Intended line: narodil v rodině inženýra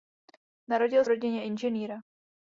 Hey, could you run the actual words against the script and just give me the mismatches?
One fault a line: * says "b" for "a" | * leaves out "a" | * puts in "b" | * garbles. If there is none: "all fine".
all fine